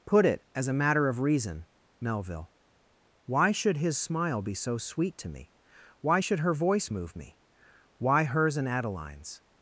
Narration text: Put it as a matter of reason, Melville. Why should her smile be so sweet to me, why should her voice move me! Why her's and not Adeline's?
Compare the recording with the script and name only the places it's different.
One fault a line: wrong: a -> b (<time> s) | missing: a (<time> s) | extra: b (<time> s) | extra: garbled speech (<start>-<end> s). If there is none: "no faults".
wrong: her -> his (3.8 s)
missing: not (8.7 s)